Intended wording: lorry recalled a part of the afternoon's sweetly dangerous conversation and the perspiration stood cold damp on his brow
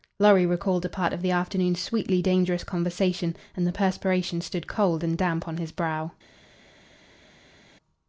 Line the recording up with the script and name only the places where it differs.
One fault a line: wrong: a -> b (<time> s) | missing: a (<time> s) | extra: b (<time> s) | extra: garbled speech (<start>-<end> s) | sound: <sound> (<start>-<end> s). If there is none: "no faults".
extra: and (5.0 s)